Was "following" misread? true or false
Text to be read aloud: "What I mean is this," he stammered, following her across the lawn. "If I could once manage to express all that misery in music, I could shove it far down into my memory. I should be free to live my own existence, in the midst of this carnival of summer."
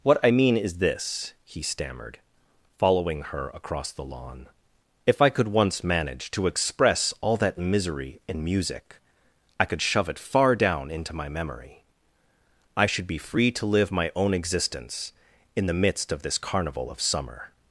false